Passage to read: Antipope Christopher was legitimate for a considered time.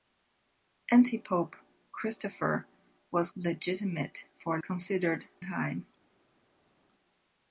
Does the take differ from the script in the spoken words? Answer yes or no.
no